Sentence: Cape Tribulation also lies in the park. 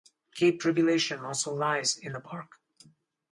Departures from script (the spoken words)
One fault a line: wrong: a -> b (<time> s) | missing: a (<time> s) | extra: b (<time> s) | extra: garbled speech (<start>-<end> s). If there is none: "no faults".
no faults